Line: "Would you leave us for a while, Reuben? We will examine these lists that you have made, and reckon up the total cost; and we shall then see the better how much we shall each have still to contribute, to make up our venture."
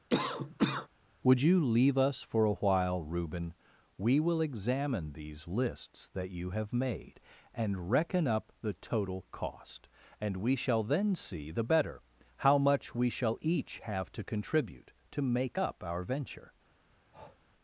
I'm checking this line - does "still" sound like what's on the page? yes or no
no